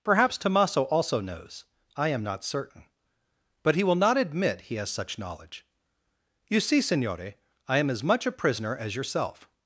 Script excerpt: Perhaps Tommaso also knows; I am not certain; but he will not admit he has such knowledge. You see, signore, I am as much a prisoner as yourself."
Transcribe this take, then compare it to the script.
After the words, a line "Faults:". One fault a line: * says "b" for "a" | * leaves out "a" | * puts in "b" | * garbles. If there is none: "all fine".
Perhaps Tommaso also knows; I am not certain; but he will not admit he has such knowledge. You see, signore, I am as much a prisoner as yourself."
Faults:
all fine